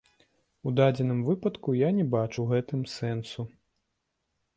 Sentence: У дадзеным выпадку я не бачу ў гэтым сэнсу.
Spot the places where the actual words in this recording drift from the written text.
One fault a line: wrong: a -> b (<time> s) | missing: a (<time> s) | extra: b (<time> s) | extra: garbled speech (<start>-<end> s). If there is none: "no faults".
no faults